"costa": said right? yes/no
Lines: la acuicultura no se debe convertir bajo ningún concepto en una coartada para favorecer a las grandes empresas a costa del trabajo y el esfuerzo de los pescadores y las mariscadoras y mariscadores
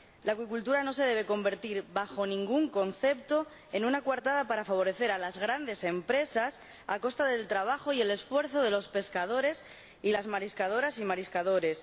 yes